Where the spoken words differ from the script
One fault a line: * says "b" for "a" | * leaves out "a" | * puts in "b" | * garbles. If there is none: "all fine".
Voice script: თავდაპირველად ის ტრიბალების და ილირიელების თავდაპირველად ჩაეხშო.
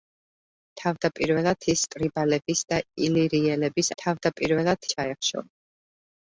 all fine